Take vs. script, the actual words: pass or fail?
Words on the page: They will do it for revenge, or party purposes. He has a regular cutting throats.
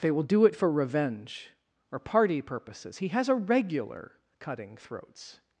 pass